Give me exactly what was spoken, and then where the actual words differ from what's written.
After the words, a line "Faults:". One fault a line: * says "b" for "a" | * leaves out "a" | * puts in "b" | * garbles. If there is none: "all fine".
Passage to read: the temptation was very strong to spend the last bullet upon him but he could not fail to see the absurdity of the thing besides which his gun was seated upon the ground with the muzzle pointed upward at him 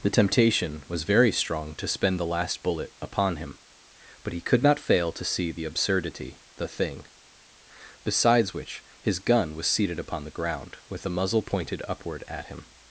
the temptation was very strong to spend the last bullet upon him but he could not fail to see the absurdity the thing besides which his gun was seated upon the ground with the muzzle pointed upward at him
Faults:
* leaves out "of"